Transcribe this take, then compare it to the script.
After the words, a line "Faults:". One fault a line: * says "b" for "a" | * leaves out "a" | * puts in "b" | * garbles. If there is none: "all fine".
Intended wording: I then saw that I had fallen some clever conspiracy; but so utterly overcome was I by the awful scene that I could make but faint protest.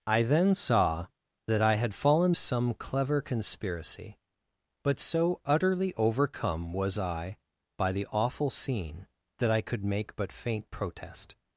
I then saw that I had fallen some clever conspiracy; but so utterly overcome was I by the awful scene that I could make but faint protest.
Faults:
all fine